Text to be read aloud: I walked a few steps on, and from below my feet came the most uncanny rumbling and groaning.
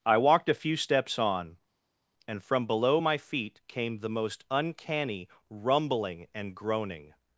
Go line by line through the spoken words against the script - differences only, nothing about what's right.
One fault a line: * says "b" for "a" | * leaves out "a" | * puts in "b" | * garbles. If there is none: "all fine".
all fine